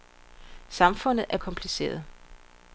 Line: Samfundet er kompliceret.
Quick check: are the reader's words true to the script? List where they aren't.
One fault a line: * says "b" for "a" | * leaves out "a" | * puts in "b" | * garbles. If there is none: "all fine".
all fine